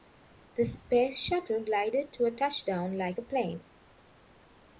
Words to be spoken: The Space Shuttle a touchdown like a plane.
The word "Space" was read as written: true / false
true